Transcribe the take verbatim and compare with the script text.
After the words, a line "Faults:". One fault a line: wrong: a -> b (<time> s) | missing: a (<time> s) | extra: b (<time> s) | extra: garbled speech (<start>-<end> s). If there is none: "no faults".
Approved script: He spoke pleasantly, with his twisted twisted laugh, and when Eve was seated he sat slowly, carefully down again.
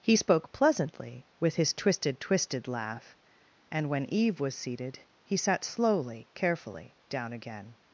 He spoke pleasantly, with his twisted twisted laugh, and when Eve was seated he sat slowly, carefully down again.
Faults:
no faults